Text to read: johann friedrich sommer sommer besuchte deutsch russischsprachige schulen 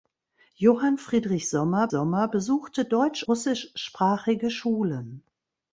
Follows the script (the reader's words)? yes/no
yes